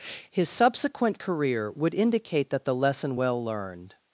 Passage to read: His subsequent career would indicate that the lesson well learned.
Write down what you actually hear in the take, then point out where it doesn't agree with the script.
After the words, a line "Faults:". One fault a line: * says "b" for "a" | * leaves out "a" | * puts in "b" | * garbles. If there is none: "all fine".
His subsequent career would indicate that the lesson well learned.
Faults:
all fine